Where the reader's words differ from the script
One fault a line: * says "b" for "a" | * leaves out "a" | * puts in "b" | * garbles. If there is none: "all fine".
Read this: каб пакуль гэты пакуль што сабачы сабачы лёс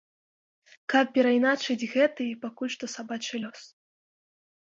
* says "перайначыць" for "пакуль"
* leaves out "сабачы"